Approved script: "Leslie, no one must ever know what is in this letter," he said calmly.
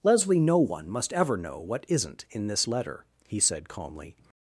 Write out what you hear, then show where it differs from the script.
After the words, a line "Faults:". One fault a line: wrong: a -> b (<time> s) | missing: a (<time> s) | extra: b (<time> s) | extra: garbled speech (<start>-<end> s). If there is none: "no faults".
"Leslie, no one must ever know what isn't in this letter," he said calmly.
Faults:
wrong: is -> isn't (1.9 s)